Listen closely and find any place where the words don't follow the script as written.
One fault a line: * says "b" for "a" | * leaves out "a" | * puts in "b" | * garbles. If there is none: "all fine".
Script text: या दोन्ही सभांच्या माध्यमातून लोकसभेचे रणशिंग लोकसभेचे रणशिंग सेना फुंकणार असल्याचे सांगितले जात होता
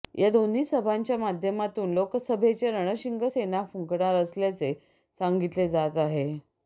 * leaves out "लोकसभेचे रणशिंग"
* says "आहे" for "होता"